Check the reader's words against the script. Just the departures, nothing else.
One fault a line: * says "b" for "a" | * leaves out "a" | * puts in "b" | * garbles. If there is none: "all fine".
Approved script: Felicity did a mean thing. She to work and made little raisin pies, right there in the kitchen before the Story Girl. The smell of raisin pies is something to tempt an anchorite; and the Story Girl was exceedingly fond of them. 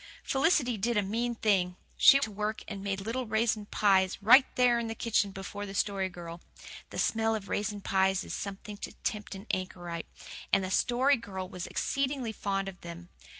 all fine